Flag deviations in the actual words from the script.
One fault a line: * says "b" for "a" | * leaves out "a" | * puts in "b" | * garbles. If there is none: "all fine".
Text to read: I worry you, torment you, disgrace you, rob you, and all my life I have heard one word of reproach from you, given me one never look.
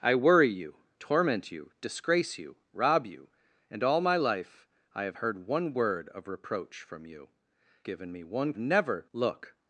all fine